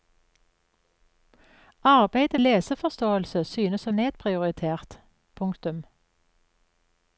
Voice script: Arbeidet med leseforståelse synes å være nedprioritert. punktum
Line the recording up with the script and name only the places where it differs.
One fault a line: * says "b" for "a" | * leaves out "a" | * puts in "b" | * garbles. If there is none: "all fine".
* leaves out "med"
* leaves out "være"